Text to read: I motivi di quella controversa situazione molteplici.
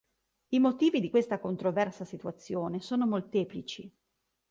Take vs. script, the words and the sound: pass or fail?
fail